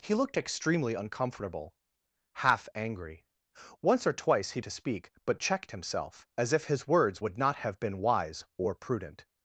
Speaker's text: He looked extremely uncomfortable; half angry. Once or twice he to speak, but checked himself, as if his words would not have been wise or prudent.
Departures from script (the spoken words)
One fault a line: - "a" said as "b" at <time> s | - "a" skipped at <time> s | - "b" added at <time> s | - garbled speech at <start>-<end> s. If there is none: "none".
none